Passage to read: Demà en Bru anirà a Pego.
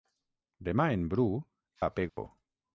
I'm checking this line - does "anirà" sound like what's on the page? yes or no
no